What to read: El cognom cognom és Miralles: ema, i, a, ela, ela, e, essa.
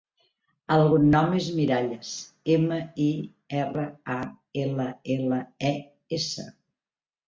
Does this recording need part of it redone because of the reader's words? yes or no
yes